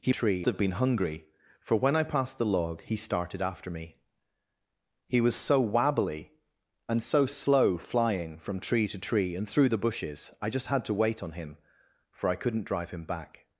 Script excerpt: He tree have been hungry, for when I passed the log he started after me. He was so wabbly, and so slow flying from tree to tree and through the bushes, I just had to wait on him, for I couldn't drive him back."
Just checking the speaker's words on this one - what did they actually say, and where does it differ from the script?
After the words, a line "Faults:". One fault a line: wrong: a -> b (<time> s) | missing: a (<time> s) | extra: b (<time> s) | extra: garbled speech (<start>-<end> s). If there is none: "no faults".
He tree have been hungry, for when I passed the log he started after me. He was so wabbly, and so slow flying from tree to tree and through the bushes, I just had to wait on him, for I couldn't drive him back."
Faults:
no faults